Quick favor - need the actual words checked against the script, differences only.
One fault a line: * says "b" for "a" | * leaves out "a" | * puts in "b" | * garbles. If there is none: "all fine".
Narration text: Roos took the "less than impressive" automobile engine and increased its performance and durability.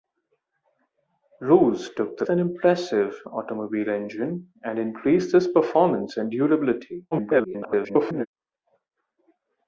* leaves out "less"
* garbles